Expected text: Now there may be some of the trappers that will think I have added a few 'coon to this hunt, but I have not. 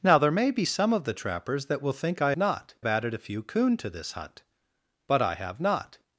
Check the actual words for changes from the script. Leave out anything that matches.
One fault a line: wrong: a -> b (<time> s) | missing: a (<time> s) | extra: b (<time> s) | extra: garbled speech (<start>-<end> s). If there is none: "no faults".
wrong: have -> not (2.4 s)